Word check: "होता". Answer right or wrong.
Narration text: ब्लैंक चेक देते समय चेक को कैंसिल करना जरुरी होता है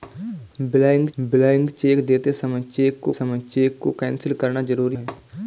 wrong